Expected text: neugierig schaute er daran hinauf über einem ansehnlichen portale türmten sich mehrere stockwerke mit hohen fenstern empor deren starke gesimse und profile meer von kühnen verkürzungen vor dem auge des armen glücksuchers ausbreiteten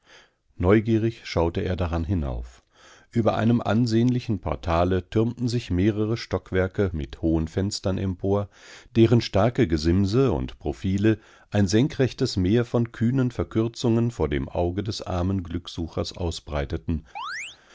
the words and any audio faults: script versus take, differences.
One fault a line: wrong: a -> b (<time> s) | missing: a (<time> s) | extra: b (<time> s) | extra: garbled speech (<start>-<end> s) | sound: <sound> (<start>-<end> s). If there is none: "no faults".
extra: ein senkrechtes (11.5 s)
sound: chirp (17.2-17.6 s)